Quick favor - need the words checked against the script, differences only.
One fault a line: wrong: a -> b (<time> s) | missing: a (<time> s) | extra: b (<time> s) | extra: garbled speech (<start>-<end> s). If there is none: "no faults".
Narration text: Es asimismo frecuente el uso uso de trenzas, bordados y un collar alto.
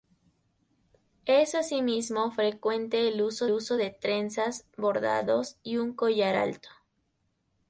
no faults